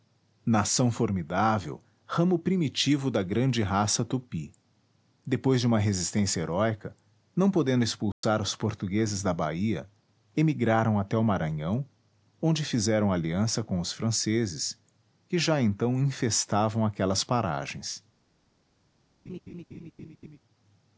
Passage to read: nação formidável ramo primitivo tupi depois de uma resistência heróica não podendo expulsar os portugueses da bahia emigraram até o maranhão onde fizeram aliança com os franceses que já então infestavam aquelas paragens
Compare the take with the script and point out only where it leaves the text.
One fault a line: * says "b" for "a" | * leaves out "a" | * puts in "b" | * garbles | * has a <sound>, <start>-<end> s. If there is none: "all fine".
* puts in "da grande raça"
* has a dropout, 8.1-8.2 s
* has a laugh, 19.3-20.4 s